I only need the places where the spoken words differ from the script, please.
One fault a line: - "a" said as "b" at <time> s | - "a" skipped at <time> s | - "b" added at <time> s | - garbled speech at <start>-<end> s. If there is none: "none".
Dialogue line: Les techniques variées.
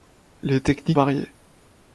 none